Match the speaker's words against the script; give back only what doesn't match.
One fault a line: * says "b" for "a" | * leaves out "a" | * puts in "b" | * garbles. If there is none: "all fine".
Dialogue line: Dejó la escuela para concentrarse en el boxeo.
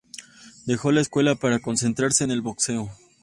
all fine